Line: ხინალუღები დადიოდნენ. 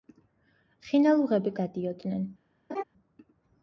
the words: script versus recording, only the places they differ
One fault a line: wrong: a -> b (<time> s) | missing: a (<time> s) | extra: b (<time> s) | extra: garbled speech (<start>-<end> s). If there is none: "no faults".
no faults